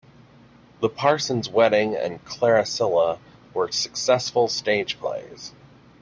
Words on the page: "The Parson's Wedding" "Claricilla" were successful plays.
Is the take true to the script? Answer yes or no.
no